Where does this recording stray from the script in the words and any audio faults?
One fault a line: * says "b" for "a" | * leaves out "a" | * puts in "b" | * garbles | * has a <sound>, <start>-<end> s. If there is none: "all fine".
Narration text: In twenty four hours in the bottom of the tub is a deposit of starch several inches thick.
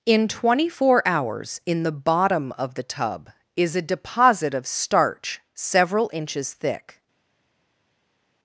all fine